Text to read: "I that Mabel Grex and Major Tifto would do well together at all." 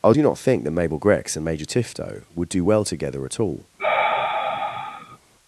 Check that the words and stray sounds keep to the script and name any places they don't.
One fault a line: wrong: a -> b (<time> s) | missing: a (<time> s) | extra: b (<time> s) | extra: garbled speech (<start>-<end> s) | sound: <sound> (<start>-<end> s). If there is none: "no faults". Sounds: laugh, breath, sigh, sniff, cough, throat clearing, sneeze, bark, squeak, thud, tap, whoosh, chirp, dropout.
extra: do not think (0.1 s)
sound: sigh (3.8-5.2 s)